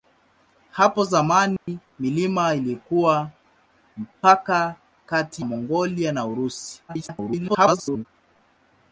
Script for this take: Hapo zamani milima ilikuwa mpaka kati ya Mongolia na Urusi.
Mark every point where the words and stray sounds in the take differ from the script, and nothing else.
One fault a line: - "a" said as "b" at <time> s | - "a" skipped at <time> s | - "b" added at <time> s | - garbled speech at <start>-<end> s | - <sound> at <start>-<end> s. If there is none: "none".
- dropout at 1.6-1.7 s
- "ya" skipped at 5.5 s
- garbled speech at 6.9-8.1 s